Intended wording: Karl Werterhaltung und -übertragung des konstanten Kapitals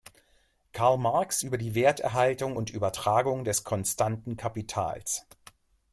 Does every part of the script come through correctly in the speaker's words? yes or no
no